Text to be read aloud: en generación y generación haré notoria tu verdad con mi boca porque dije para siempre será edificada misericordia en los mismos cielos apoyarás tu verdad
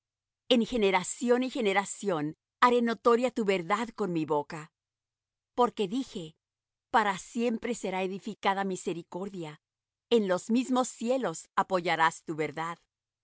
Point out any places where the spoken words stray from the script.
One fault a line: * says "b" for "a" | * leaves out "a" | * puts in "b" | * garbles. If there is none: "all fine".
all fine